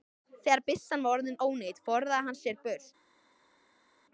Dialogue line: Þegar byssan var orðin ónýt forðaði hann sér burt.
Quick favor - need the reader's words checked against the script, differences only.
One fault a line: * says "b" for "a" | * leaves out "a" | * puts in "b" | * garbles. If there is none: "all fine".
all fine